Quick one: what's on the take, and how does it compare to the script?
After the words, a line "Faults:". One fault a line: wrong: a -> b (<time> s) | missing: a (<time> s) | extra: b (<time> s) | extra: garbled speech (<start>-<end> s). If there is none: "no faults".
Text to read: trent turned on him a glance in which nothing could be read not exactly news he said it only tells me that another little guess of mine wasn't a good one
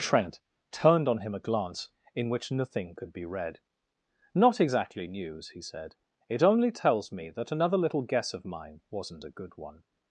trent turned on him a glance in which nothing could be read not exactly news he said it only tells me that another little guess of mine wasn't a good one
Faults:
no faults